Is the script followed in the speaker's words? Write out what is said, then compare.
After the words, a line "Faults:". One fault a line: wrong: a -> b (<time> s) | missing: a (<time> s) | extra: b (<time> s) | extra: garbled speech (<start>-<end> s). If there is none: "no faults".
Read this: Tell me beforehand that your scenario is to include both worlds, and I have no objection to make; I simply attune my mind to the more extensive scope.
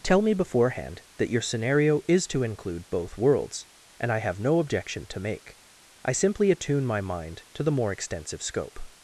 Tell me beforehand that your scenario is to include both worlds, and I have no objection to make; I simply attune my mind to the more extensive scope.
Faults:
no faults